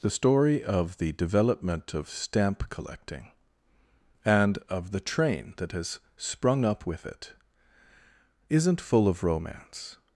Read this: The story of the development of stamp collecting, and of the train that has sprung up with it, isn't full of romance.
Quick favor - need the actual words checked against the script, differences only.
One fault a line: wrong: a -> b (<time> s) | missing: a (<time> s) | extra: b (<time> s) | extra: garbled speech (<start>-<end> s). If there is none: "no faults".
no faults